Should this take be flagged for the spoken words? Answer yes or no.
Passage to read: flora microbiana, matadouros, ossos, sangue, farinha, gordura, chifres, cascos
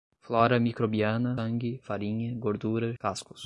yes